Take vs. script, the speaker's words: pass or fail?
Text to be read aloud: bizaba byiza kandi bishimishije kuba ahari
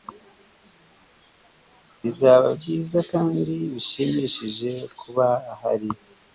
pass